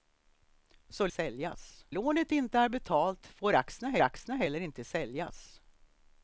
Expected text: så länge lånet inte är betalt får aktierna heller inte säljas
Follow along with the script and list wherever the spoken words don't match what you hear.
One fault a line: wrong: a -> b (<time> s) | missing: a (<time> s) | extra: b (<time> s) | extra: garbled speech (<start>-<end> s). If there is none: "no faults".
wrong: länge -> säljas (1.1 s)
extra: aktierna (4.0 s)